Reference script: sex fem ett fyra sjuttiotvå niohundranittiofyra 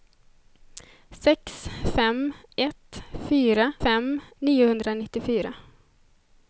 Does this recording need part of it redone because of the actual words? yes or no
yes